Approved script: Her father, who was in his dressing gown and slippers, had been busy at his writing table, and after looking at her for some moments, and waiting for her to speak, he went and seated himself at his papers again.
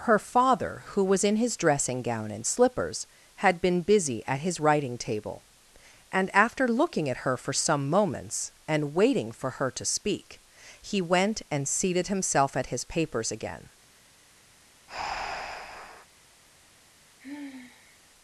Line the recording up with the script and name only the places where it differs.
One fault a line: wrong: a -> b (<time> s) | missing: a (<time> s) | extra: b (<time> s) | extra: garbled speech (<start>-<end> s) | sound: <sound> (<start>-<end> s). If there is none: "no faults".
sound: breath (14.9-16.1 s)
sound: sigh (17.2-18.0 s)